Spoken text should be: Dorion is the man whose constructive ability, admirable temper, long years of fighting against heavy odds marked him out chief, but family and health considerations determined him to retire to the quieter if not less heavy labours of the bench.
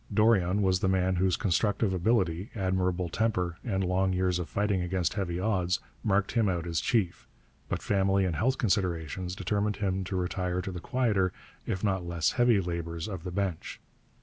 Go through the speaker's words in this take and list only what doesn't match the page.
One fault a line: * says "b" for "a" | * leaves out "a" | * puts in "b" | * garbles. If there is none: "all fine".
* says "was" for "is"
* puts in "and"
* puts in "as"